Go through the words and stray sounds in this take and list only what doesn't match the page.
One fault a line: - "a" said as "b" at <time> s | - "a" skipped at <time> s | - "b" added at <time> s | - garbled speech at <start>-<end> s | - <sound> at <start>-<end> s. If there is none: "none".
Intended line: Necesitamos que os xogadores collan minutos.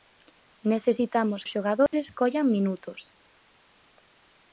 - "que" skipped at 1.4 s
- dropout at 1.9-1.9 s